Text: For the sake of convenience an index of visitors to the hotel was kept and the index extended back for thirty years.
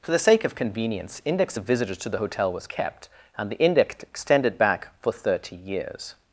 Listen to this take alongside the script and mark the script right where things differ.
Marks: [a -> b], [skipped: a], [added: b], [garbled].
For the sake of convenience [skipped: an] index of visitors to the hotel was kept and the index extended back for thirty years.